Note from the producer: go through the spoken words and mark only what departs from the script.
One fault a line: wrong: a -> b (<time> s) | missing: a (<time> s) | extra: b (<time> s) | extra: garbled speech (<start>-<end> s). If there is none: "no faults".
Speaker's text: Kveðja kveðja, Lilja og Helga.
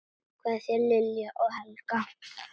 missing: kveðja (0.8 s)